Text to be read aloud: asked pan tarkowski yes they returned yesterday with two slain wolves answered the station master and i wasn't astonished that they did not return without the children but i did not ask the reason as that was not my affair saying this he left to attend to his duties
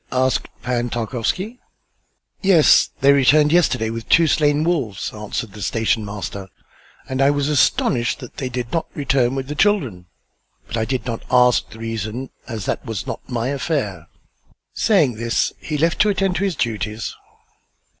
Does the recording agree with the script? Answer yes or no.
no